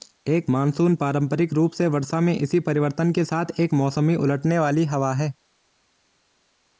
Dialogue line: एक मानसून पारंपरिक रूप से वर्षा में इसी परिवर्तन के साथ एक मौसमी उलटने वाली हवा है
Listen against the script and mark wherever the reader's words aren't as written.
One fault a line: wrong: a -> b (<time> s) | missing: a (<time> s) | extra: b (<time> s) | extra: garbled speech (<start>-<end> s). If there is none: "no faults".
no faults